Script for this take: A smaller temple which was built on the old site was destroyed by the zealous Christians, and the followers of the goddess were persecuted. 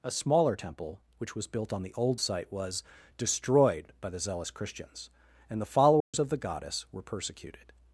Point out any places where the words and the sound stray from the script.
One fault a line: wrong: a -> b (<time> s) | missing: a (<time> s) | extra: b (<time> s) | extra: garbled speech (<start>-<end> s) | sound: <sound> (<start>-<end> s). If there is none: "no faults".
sound: dropout (6.0-6.1 s)